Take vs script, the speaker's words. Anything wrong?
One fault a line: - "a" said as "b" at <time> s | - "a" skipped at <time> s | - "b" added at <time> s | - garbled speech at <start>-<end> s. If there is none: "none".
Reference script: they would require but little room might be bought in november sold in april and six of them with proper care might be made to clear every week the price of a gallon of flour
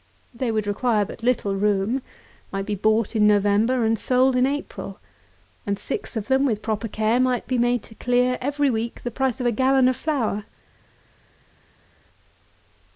- "and" added at 3.9 s